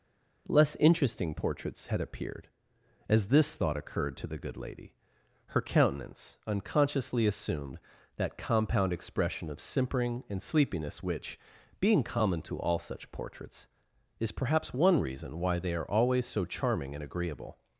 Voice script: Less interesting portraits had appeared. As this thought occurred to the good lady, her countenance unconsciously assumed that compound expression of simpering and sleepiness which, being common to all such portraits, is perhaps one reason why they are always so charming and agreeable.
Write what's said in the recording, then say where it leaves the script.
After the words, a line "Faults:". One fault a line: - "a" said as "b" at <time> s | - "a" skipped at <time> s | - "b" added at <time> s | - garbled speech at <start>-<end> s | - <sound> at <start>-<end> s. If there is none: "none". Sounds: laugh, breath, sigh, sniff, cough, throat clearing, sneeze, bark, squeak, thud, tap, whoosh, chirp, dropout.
Less interesting portraits had appeared. As this thought occurred to the good lady, her countenance unconsciously assumed that compound expression of simpering and sleepiness which, being common to all such portraits, is perhaps one reason why they are always so charming and agreeable.
Faults:
none